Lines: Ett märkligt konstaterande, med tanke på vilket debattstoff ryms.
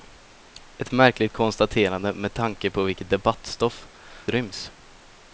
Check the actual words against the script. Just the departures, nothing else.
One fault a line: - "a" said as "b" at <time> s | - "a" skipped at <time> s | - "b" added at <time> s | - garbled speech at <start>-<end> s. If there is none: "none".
none